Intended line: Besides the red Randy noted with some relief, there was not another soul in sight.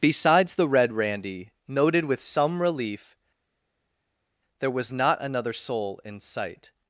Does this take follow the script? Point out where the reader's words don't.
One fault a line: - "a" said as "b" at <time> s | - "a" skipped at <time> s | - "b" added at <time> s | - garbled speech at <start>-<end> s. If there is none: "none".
none